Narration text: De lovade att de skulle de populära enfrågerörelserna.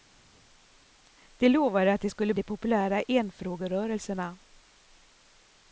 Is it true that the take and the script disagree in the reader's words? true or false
false